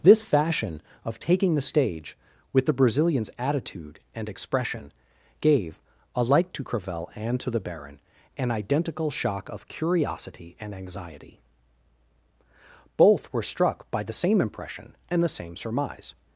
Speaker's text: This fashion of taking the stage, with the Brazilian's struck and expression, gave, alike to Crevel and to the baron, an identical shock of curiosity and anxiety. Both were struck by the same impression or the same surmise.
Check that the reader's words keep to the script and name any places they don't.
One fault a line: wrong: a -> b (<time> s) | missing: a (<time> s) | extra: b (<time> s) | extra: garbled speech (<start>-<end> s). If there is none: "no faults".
wrong: struck -> attitude (3.4 s)
wrong: or -> and (15.1 s)